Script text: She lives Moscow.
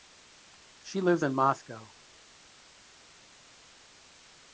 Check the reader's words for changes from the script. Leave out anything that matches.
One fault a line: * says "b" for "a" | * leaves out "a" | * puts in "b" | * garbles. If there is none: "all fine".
* puts in "in"